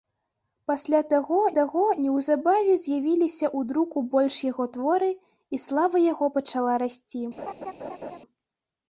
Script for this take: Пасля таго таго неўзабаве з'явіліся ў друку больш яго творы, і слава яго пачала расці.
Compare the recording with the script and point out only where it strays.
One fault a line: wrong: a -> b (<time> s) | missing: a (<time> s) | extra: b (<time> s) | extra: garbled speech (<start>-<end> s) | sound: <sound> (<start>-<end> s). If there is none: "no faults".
sound: laugh (7.4-8.2 s)